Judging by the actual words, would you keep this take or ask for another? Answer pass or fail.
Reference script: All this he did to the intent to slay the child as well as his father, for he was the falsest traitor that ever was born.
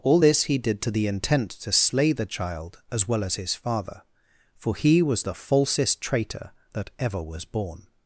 pass